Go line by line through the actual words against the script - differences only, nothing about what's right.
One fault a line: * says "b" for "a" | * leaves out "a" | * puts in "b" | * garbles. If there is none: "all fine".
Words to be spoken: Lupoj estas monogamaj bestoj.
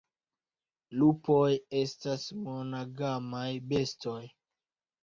all fine